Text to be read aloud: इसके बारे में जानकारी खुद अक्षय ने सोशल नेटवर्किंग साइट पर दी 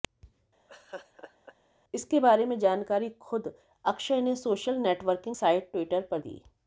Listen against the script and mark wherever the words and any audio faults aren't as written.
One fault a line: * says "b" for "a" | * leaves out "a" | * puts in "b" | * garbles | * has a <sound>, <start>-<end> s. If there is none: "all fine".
* has a laugh, 0.7-1.5 s
* puts in "ट्विटर"